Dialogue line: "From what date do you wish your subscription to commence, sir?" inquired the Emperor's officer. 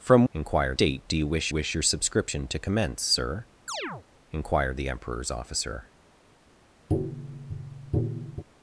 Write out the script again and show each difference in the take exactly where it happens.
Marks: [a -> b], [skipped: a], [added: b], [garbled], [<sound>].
"From [what -> inquired] date do you wish [added: wish] your subscription to commence, sir?" [chirp] inquired the Emperor's officer. [tap]